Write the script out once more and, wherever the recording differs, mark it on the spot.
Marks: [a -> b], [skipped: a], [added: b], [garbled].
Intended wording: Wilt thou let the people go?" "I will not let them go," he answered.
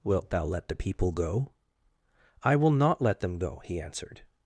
Wilt thou let the people go?" "I will not let them go," he answered.